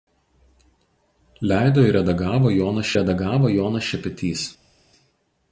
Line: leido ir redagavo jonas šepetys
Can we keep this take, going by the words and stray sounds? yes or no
no